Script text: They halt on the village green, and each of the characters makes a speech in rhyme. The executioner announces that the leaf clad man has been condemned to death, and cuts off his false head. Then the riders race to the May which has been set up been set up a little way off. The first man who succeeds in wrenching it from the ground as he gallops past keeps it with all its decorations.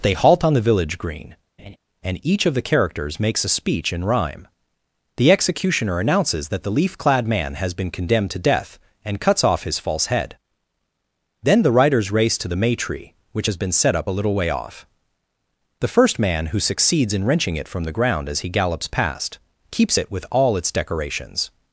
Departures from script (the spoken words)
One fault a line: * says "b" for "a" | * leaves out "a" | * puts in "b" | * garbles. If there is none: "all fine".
* puts in "tree"
* leaves out "been set up"